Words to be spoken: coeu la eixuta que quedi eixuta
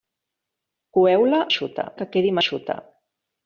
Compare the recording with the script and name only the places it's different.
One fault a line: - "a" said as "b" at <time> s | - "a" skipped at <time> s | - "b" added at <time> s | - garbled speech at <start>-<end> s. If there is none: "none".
none